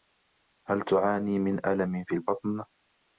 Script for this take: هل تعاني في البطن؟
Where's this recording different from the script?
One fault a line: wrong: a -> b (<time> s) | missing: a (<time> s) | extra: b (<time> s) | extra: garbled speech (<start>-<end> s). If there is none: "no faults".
extra: من ألم (1.4 s)